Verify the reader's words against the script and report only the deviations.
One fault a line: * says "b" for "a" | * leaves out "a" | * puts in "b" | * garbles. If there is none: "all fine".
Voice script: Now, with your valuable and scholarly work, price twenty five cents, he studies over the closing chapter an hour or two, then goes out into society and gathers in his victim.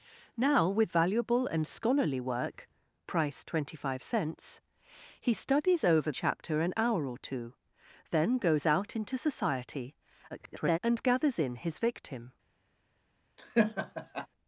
* leaves out "your"
* leaves out "the closing"
* garbles